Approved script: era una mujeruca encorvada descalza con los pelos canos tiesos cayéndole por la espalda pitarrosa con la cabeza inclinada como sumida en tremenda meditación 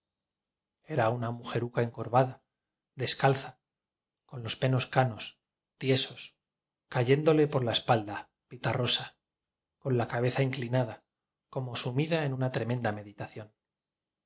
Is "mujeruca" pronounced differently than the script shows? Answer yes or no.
no